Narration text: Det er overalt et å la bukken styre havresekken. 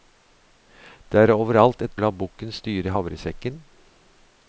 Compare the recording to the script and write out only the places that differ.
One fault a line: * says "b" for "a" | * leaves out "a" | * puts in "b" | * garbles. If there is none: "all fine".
all fine